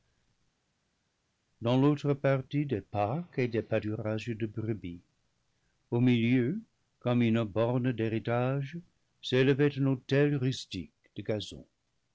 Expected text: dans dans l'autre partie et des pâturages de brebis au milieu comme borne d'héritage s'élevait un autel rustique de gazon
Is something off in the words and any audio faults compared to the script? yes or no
yes